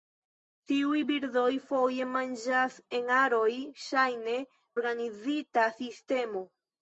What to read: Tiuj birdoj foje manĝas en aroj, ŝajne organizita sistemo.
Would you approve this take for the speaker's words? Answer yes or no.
yes